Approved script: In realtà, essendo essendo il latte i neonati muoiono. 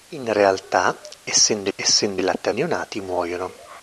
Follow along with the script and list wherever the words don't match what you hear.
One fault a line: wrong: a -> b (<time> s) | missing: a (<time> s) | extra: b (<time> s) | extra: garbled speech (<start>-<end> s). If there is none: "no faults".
no faults